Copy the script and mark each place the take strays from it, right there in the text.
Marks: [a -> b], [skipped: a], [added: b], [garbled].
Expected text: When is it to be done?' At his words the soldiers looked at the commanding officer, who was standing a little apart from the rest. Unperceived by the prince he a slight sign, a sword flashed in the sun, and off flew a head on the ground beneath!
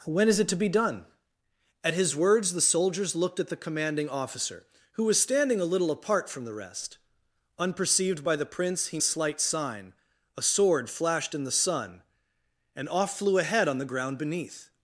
When is it to be done?' At his words the soldiers looked at the commanding officer, who was standing a little apart from the rest. Unperceived by the prince he a slight sign, a sword flashed in the sun, and off flew a head on the ground beneath!